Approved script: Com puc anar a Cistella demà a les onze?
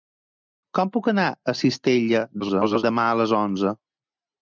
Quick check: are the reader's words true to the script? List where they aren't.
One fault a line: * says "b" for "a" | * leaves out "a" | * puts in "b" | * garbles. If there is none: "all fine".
* garbles